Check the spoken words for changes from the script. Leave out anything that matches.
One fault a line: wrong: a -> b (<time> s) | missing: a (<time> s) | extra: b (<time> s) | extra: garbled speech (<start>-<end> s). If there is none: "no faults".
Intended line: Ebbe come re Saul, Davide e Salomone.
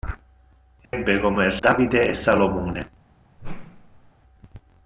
missing: re Saul (1.6 s)